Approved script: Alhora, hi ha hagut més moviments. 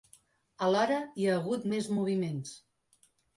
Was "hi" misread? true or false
false